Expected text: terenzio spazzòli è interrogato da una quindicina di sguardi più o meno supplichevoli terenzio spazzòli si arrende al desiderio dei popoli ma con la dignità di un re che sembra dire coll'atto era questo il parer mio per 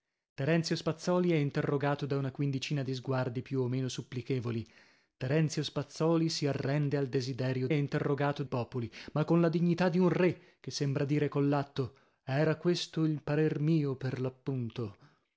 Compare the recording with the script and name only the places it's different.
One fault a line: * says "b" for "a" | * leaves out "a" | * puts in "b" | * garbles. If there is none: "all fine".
* says "interrogato" for "dei"